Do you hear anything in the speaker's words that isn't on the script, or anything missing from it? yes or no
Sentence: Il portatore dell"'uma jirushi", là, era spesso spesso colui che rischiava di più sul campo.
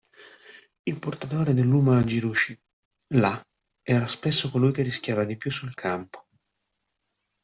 yes